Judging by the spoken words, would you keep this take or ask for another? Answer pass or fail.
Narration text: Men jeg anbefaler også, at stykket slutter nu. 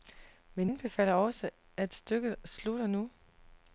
fail